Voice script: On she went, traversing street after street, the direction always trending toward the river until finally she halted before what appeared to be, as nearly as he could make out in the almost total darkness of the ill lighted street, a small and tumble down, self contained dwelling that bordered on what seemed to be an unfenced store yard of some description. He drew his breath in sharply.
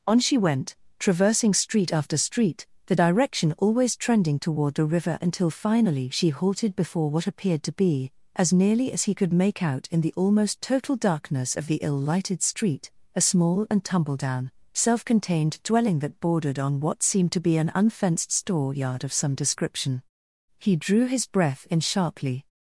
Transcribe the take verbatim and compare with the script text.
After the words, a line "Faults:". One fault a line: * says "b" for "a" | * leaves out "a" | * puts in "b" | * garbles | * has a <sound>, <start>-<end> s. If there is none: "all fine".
On she went, traversing street after street, the direction always trending toward the river until finally she halted before what appeared to be, as nearly as he could make out in the almost total darkness of the ill lighted street, a small and tumble down, self contained dwelling that bordered on what seemed to be an unfenced store yard of some description. He drew his breath in sharply.
Faults:
all fine